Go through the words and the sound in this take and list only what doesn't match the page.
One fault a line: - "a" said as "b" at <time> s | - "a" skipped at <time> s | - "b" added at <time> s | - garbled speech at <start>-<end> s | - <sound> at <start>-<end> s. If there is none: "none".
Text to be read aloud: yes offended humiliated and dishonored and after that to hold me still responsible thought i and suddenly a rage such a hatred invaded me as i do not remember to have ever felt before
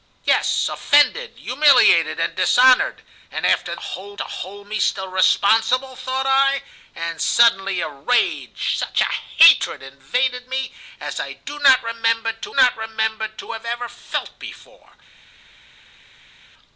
- "that" said as "hold" at 3.8 s
- "not remember to" added at 12.5 s